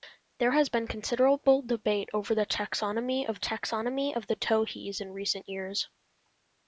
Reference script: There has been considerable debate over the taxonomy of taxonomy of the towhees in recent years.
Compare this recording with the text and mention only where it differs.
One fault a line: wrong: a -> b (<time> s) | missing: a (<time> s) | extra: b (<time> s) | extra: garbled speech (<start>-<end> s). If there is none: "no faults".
no faults